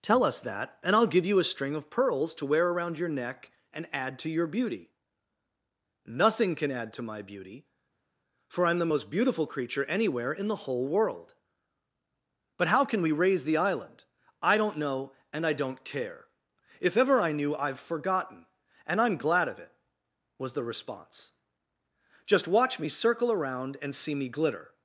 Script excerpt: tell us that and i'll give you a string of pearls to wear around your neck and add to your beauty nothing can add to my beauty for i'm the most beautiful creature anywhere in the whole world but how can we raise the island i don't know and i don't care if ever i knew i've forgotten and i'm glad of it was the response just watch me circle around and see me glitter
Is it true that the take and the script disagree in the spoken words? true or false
false